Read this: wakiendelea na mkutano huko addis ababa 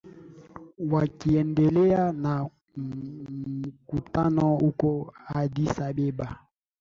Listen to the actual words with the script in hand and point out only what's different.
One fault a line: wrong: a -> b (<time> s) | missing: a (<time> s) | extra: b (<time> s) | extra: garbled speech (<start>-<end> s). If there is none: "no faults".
no faults